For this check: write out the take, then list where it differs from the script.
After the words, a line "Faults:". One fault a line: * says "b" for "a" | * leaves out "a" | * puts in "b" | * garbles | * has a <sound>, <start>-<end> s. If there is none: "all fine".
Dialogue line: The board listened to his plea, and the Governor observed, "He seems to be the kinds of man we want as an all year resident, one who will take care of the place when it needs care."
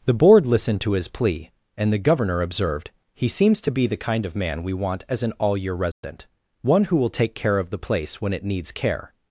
The board listened to his plea, and the Governor observed, "He seems to be the kind of man we want as an all year resident, one who will take care of the place when it needs care."
Faults:
* says "kind" for "kinds"
* has a dropout, 5.9-6.0 s